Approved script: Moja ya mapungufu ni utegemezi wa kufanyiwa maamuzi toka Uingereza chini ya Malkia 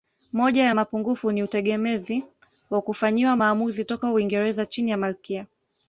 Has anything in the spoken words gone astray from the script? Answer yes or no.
no